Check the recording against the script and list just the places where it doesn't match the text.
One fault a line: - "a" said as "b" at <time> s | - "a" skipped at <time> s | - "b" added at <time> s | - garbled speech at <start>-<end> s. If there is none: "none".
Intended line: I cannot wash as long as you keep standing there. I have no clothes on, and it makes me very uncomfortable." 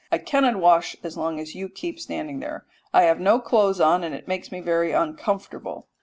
none